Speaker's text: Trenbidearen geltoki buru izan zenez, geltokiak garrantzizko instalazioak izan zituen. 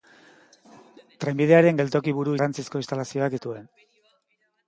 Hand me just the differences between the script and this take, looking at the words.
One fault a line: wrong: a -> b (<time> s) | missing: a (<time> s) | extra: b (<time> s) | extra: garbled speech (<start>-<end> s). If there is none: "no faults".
missing: izan zenez geltokiak (2.3 s)
missing: izan (3.4 s)